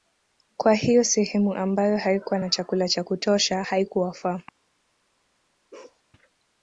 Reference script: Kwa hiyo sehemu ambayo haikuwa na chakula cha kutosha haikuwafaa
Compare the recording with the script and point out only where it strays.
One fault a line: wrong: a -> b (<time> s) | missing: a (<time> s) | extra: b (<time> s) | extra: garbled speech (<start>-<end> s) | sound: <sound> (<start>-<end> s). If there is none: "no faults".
sound: bark (5.7-6.0 s)